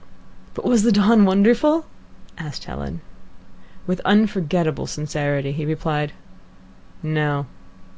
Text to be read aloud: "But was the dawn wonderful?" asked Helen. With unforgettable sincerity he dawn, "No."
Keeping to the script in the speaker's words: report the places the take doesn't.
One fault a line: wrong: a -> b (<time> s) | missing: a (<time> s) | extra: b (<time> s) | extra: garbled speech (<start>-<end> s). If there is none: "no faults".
wrong: dawn -> replied (5.7 s)